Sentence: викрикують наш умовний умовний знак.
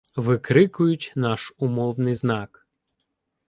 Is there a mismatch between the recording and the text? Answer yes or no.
yes